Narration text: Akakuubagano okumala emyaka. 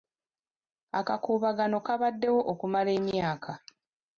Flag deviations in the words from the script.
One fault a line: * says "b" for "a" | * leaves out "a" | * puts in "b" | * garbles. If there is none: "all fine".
* puts in "kabaddewo"